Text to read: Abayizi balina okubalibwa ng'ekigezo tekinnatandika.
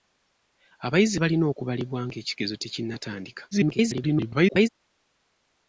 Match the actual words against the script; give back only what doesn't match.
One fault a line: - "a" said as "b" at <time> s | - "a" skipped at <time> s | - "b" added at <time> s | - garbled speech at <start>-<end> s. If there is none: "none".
- garbled speech at 3.5-4.7 s